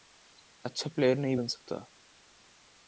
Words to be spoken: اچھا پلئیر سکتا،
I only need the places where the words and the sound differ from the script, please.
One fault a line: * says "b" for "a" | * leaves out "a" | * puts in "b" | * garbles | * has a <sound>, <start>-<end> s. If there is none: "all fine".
* puts in "نہیں بن"